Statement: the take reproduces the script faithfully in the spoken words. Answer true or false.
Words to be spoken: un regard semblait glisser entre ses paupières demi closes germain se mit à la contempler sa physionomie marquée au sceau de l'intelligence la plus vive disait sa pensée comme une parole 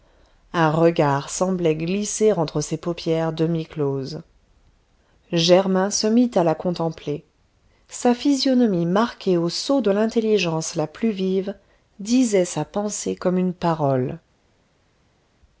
true